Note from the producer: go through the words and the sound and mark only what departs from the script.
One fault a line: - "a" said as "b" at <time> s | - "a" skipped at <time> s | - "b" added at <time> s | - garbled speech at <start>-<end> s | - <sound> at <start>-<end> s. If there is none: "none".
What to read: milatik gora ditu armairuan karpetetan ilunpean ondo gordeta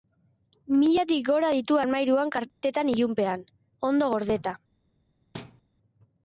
- dropout at 2.5-2.6 s
- thud at 5.3-5.6 s